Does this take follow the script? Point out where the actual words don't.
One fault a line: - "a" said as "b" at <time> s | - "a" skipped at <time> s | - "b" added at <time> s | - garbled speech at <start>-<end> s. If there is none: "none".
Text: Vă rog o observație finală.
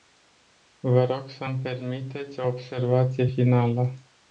- "să mi permiteți" added at 1.3 s